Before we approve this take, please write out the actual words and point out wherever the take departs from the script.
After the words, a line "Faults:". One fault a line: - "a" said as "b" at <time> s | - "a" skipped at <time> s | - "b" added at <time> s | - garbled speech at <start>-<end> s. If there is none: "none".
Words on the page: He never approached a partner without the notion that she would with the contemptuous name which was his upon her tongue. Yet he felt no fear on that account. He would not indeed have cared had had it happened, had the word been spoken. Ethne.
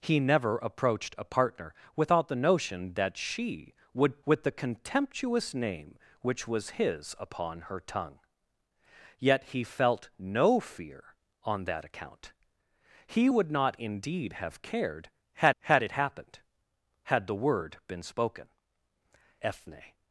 He never approached a partner without the notion that she would with the contemptuous name which was his upon her tongue. Yet he felt no fear on that account. He would not indeed have cared had had it happened, had the word been spoken. Ethne.
Faults:
none